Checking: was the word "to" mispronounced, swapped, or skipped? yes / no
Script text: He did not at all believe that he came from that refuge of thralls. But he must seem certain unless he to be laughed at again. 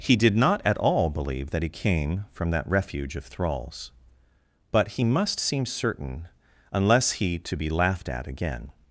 no